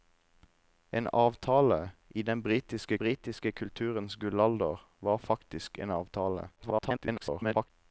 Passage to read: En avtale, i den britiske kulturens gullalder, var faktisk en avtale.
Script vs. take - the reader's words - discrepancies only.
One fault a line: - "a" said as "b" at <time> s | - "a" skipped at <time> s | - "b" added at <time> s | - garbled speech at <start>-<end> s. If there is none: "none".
- "britiske" added at 3.0 s
- garbled speech at 6.6-7.7 s